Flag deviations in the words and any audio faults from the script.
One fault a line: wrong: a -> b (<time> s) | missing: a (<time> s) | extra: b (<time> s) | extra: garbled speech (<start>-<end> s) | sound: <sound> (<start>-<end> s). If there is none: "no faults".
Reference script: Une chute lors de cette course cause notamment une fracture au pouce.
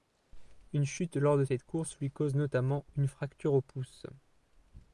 extra: lui (2.0 s)